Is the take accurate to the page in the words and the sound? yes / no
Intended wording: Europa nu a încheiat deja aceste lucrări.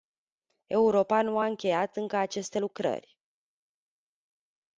no